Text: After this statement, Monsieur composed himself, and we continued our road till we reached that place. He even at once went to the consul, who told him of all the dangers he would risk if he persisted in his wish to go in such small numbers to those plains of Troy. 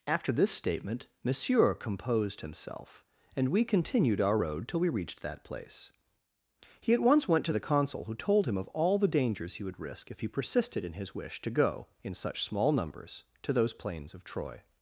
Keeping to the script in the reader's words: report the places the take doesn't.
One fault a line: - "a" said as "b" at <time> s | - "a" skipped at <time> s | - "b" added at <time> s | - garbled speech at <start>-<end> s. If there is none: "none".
- "even" skipped at 6.9 s